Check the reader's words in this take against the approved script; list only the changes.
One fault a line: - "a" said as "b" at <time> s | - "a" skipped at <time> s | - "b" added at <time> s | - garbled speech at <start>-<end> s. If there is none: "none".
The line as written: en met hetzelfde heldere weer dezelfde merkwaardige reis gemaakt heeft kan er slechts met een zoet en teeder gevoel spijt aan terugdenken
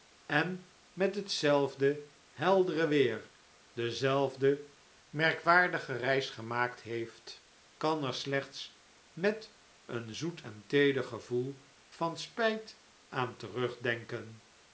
- "van" added at 11.9 s